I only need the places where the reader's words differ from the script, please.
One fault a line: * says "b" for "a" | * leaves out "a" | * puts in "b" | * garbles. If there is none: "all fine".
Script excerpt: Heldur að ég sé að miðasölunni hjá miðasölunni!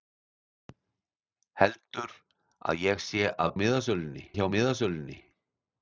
all fine